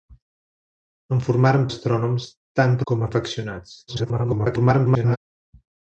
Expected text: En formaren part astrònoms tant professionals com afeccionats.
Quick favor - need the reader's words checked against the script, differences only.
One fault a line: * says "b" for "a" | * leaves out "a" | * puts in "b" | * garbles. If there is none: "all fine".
* leaves out "part"
* leaves out "professionals"
* garbles